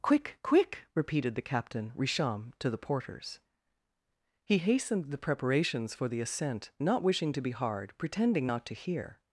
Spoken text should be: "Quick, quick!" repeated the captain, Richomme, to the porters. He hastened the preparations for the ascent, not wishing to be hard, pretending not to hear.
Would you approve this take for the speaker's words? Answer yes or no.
yes